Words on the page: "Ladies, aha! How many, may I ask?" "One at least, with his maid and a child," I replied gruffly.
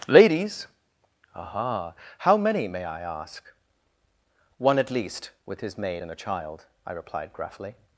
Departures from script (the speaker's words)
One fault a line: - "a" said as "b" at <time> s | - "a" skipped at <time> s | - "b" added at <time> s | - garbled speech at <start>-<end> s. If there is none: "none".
none